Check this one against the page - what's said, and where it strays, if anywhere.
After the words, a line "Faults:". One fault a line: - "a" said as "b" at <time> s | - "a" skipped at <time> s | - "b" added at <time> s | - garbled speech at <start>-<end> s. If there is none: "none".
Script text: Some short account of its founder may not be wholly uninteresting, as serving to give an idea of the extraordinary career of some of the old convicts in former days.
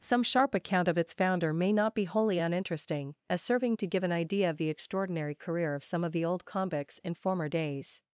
Some sharp account of its founder may not be wholly uninteresting, as serving to give an idea of the extraordinary career of some of the old convicts in former days.
Faults:
- "short" said as "sharp" at 0.2 s